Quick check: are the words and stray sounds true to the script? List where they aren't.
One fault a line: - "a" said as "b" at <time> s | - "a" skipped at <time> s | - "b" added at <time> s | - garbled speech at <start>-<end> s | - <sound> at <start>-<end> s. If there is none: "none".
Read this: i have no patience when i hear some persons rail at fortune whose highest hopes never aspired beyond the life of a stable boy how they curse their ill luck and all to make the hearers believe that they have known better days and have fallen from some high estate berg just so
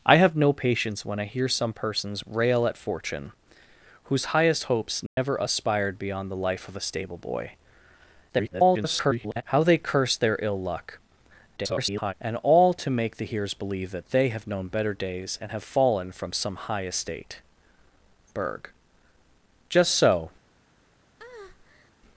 - dropout at 5.1-5.2 s
- garbled speech at 8.3-9.4 s
- garbled speech at 11.6-12.1 s
- breath at 21.2-21.9 s